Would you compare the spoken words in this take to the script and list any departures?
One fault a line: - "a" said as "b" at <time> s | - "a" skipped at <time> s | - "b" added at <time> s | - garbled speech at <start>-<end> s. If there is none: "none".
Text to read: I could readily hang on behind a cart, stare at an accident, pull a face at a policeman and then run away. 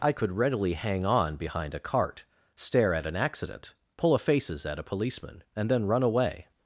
- "face" said as "faces" at 4.2 s